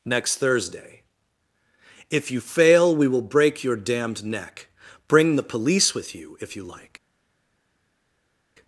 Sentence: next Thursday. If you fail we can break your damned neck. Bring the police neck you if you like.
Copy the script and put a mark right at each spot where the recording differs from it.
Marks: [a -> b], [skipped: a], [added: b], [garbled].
next Thursday. If you fail we [can -> will] break your damned neck. Bring the police [neck -> with] you if you like.